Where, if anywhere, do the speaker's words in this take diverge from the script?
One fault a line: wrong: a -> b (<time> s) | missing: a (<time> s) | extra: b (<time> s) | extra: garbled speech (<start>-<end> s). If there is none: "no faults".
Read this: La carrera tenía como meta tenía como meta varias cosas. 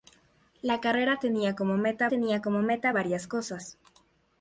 no faults